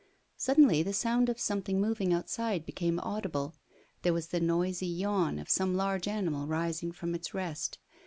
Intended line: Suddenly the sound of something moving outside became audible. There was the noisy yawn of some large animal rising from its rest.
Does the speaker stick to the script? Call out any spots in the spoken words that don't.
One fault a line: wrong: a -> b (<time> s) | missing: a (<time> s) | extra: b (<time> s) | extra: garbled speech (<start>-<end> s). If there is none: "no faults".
no faults